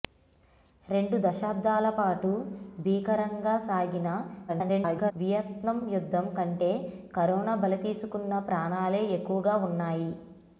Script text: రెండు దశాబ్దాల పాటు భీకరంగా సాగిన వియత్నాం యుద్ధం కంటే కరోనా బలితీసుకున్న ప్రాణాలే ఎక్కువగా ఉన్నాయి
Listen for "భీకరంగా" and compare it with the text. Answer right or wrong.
right